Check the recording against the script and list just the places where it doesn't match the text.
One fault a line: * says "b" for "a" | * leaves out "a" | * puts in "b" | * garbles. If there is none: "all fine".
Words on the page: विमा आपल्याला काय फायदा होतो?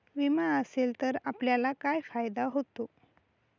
* puts in "असेल तर"